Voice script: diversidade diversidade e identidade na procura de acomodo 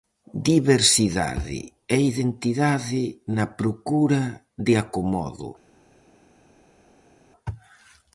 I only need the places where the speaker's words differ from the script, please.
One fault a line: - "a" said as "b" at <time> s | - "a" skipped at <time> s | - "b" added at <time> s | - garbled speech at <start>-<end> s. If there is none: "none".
- "diversidade" skipped at 1.6 s